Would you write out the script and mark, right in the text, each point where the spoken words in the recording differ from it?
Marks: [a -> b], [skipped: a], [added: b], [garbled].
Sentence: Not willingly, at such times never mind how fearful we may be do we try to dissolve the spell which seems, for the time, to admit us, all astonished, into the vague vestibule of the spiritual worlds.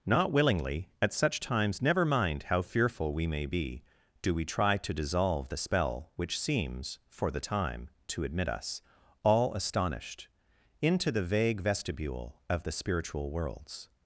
Not willingly, at such times never mind how fearful we may be do we try to dissolve the spell which seems, for the time, to admit us, all astonished, into the vague vestibule of the spiritual worlds.